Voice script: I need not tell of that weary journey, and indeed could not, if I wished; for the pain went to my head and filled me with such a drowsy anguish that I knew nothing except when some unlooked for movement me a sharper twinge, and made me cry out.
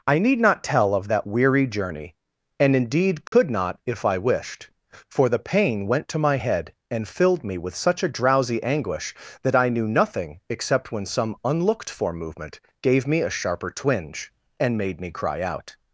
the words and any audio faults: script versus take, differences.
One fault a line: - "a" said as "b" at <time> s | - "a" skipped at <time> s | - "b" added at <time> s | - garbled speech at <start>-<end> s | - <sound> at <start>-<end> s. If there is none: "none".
- dropout at 3.3-3.3 s
- "gave" added at 12.8 s